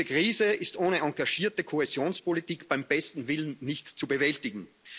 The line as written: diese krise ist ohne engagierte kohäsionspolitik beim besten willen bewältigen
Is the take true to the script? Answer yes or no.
no